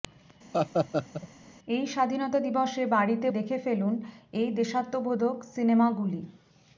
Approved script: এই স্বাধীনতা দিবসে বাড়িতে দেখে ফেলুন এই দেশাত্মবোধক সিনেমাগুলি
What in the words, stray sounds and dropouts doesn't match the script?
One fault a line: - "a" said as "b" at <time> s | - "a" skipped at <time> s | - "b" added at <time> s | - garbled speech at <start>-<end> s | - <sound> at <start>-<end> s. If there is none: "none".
- laugh at 0.5-1.3 s